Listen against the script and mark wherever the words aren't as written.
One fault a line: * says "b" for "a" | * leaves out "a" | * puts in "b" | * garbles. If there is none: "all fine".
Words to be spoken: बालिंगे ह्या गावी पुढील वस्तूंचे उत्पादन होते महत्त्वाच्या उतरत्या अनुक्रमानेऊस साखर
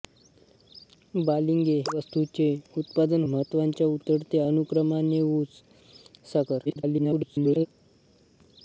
* leaves out "ह्या गावी पुढील"
* leaves out "होते"
* garbles